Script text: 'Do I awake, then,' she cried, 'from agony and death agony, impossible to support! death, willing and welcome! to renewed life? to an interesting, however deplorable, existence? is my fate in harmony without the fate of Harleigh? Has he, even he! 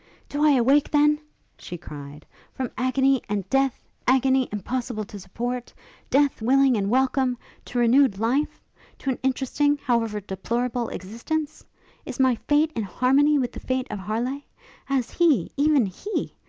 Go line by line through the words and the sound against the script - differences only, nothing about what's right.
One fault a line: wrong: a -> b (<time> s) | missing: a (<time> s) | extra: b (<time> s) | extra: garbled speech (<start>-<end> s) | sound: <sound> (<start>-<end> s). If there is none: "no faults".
wrong: without -> with (13.4 s)